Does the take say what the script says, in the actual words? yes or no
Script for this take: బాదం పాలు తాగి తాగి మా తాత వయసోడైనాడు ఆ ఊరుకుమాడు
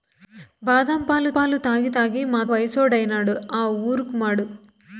no